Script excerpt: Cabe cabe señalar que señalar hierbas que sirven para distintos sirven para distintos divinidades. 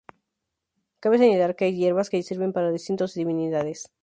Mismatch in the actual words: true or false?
true